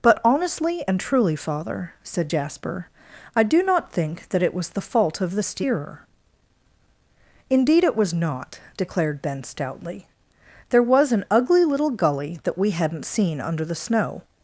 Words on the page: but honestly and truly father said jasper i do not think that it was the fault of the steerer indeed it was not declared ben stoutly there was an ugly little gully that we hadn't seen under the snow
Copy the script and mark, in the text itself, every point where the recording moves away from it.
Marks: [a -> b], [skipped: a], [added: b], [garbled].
but honestly and truly father said jasper i do not think that it was the fault of the steerer indeed it was not declared ben stoutly there was an ugly little gully that we hadn't seen under the snow